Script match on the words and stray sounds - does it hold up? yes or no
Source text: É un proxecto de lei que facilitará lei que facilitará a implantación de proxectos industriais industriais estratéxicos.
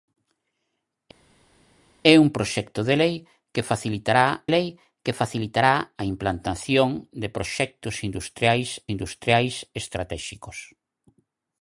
yes